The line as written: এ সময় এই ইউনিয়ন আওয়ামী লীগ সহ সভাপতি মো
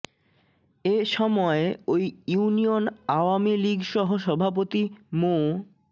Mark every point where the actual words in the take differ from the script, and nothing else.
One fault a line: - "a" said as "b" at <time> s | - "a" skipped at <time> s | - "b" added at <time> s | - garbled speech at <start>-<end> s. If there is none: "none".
- "এই" said as "ওই" at 1.9 s